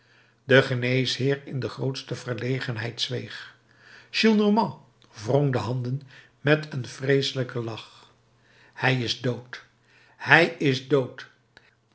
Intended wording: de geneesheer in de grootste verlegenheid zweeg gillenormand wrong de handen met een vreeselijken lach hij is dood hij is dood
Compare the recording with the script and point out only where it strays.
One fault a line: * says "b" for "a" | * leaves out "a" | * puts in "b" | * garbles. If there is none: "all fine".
all fine